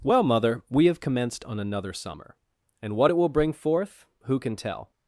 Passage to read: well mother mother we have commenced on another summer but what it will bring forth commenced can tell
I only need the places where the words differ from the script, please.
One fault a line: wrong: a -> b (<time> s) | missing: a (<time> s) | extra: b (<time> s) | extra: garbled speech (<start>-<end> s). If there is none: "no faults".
missing: mother (0.6 s)
wrong: but -> and (2.8 s)
wrong: commenced -> who (4.2 s)